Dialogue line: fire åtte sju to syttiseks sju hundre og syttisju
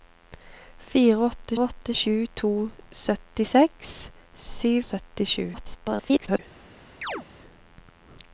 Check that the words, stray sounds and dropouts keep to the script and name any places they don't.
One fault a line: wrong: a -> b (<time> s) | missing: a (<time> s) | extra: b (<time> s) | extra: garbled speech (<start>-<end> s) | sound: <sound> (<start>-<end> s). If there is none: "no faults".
extra: åtte (1.6 s)
missing: hundre (4.7 s)
extra: garbled speech (5.5-6.4 s)
sound: chirp (7.0-7.3 s)